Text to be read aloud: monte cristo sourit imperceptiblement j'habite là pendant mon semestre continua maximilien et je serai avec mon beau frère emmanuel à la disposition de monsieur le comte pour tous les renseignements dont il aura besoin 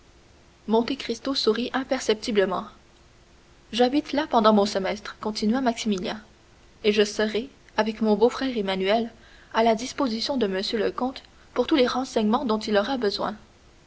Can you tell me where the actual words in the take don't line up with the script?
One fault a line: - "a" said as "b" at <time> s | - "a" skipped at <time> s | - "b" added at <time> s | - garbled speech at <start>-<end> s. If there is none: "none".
none